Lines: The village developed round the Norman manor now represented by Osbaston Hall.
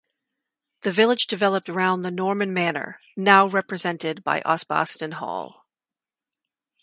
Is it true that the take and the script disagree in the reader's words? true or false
false